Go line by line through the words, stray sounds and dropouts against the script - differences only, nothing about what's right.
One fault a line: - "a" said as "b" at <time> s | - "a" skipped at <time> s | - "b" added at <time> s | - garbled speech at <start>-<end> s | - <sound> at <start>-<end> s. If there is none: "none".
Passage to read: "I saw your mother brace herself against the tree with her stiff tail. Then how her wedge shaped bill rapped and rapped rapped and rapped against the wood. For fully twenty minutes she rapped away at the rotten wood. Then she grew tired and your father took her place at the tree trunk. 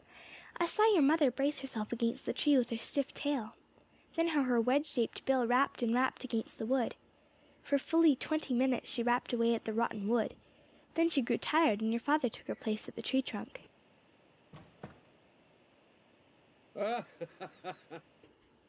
- "rapped and rapped" skipped at 6.2 s
- squeak at 14.5-15.3 s
- laugh at 16.7-18.0 s